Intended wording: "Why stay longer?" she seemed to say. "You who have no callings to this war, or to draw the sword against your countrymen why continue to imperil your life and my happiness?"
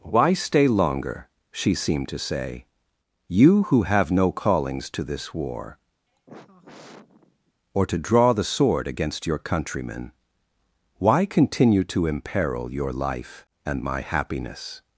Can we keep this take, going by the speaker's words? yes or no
yes